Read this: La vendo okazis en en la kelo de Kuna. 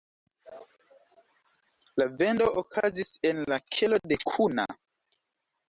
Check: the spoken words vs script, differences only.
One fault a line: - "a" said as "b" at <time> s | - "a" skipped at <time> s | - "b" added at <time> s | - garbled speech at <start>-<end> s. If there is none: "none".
- "en" skipped at 3.5 s